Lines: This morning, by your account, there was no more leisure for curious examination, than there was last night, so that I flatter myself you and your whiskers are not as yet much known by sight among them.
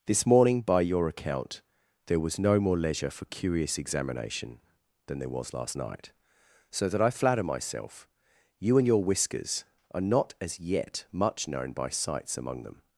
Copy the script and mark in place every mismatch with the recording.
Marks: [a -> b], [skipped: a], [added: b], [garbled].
This morning, by your account, there was no more leisure for curious examination, than there was last night, so that I flatter myself you and your whiskers are not as yet much known by [sight -> sights] among them.